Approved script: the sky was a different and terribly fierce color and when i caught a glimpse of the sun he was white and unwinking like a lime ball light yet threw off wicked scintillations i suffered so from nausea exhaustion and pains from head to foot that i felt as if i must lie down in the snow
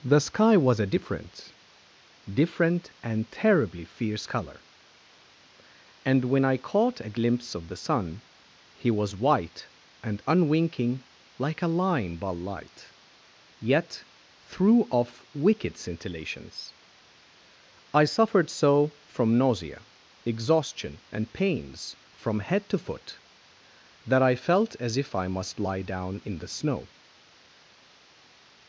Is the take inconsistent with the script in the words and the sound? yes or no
yes